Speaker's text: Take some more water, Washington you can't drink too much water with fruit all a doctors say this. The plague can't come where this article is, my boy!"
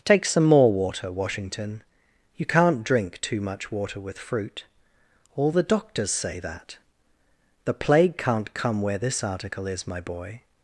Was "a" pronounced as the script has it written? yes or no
no